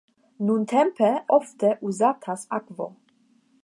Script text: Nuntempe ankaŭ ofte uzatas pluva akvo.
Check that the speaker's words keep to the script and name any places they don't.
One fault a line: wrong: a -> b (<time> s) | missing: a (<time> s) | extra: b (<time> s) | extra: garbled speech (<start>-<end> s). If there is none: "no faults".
missing: ankaŭ (1.1 s)
missing: pluva (2.5 s)